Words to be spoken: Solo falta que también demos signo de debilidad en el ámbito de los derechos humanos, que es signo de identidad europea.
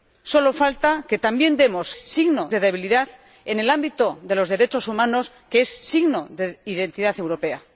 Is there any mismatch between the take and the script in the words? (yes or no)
no